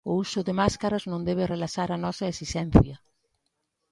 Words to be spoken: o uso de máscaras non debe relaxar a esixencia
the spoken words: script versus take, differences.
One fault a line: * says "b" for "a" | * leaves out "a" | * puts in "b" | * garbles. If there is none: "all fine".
* puts in "nosa"